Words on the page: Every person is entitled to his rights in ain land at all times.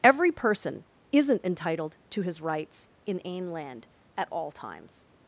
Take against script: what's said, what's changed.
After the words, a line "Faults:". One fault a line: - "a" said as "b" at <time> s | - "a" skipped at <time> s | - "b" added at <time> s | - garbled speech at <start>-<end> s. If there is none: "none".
Every person isn't entitled to his rights in ain land at all times.
Faults:
- "is" said as "isn't" at 1.1 s